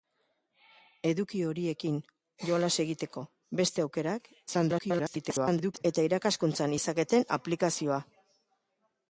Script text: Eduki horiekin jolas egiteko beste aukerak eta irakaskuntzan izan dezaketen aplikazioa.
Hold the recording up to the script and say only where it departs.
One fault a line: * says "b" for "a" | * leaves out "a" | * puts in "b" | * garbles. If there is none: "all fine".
* garbles
* leaves out "izan"